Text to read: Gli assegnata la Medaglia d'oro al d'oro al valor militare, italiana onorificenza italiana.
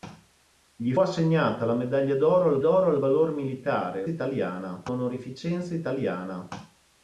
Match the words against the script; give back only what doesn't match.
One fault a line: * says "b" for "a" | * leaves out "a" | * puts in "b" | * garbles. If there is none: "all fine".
all fine